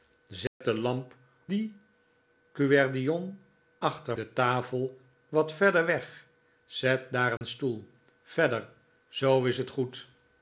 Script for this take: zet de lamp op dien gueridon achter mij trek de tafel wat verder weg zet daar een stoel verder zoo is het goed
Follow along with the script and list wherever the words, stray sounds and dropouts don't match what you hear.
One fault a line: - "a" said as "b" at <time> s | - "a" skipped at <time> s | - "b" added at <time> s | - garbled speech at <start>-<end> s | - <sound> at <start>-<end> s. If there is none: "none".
- dropout at 0.5-0.6 s
- "op" skipped at 1.1 s
- "mij trek" skipped at 4.2 s
- dropout at 7.4-7.4 s